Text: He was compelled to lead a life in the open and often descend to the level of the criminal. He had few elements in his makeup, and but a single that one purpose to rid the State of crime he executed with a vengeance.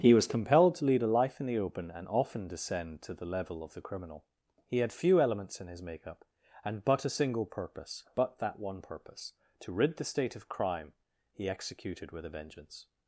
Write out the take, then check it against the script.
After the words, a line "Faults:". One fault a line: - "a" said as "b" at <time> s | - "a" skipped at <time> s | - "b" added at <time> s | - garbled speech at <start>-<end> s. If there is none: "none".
He was compelled to lead a life in the open and often descend to the level of the criminal. He had few elements in his makeup, and but a single purpose; but that one purpose to rid the State of crime he executed with a vengeance.
Faults:
- "purpose but" added at 7.5 s